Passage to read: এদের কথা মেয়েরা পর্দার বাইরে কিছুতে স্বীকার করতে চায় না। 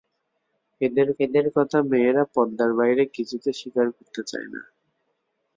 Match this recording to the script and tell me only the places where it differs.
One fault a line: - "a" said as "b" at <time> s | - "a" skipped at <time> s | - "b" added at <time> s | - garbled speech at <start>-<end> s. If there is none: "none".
- "এদের" added at 1.2 s